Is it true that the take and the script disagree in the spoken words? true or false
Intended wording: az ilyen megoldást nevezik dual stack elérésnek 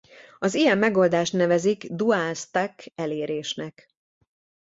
false